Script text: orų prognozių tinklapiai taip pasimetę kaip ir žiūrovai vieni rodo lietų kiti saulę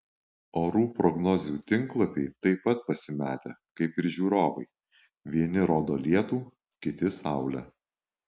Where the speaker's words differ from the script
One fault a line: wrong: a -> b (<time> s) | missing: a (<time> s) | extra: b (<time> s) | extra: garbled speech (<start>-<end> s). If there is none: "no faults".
extra: pat (2.7 s)